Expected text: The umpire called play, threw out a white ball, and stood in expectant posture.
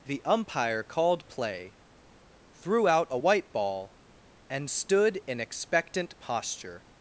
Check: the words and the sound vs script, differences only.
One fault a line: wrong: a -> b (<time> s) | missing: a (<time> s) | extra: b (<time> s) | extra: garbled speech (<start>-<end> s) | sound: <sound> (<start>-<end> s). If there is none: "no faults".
no faults